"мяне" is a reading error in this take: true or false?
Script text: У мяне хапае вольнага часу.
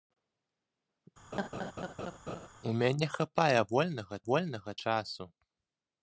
false